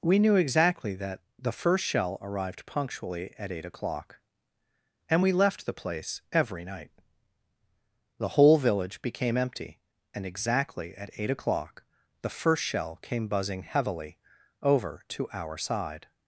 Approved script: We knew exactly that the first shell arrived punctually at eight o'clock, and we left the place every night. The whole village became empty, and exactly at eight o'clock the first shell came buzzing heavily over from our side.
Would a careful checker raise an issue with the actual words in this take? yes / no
yes